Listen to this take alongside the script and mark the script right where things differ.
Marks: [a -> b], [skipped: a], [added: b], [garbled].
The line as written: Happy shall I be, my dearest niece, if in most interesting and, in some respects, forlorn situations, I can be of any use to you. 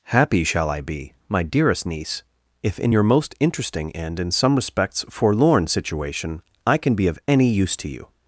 Happy shall I be, my dearest niece, if in [added: your] most interesting and, in some respects, forlorn [situations, -> situation] I can be of any use to you.